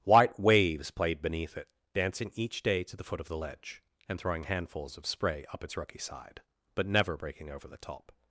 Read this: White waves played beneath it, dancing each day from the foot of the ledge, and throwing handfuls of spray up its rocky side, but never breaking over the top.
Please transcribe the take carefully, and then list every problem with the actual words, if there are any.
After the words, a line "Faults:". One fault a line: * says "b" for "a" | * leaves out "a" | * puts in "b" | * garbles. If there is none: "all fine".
White waves played beneath it, dancing each day to the foot of the ledge, and throwing handfuls of spray up its rocky side, but never breaking over the top.
Faults:
* says "to" for "from"